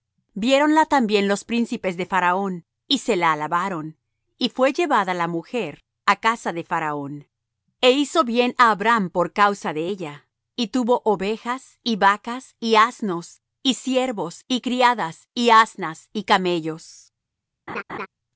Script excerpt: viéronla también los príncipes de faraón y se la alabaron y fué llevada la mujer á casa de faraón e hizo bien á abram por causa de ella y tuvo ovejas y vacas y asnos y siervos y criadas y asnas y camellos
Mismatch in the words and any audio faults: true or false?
true